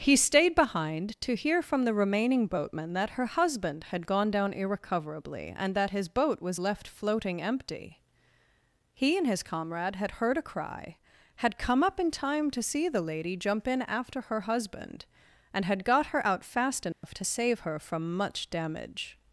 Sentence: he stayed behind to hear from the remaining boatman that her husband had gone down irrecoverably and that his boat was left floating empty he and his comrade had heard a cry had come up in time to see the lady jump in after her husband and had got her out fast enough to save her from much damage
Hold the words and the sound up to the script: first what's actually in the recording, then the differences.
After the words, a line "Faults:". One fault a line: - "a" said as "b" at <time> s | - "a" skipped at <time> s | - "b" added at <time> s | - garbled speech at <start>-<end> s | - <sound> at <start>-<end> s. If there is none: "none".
he stayed behind to hear from the remaining boatman that her husband had gone down irrecoverably and that his boat was left floating empty he and his comrade had heard a cry had come up in time to see the lady jump in after her husband and had got her out fast enough to save her from much damage
Faults:
- dropout at 16.9-17.0 s